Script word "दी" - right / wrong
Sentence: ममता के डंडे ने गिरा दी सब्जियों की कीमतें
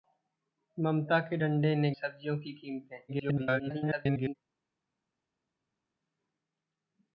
wrong